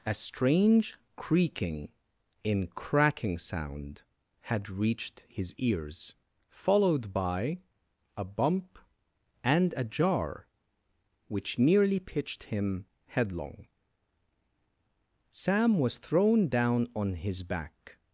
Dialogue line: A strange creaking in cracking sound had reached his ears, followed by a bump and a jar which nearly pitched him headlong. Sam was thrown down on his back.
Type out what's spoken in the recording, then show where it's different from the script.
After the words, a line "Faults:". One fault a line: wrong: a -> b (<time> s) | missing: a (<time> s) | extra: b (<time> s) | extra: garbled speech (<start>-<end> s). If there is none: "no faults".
A strange creaking in cracking sound had reached his ears, followed by a bump and a jar which nearly pitched him headlong. Sam was thrown down on his back.
Faults:
no faults